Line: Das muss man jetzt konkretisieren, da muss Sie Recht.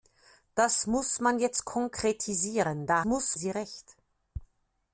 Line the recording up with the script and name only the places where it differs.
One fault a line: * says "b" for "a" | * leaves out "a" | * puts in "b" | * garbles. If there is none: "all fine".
all fine